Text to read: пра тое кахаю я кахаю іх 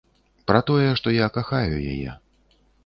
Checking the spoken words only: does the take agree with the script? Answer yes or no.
no